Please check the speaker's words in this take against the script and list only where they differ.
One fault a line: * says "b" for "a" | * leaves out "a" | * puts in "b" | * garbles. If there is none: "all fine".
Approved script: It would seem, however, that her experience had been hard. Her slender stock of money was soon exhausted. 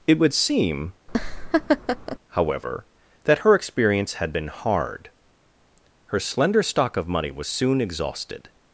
all fine